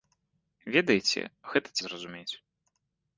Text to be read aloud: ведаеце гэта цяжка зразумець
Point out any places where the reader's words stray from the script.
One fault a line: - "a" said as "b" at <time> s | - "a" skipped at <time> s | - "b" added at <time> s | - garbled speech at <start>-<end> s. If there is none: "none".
- "цяжка" skipped at 1.8 s